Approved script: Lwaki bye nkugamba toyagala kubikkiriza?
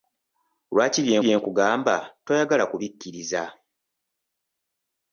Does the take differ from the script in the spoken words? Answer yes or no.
yes